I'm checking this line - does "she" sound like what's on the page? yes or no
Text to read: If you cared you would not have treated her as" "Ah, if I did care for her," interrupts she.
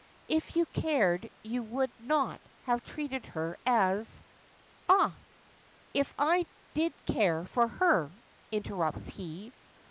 no